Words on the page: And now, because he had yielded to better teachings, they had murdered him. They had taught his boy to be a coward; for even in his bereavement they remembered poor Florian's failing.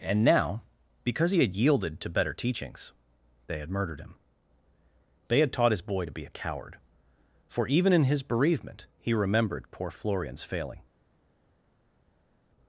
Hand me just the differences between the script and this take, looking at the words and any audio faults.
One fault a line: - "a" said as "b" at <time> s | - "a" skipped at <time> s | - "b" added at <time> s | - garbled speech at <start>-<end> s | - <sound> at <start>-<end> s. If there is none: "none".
- "they" said as "he" at 9.0 s